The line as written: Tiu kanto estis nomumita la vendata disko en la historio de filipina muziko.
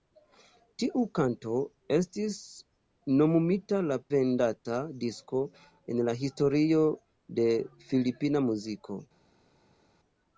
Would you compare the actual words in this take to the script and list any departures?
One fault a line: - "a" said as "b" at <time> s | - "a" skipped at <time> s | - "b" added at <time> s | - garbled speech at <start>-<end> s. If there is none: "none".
none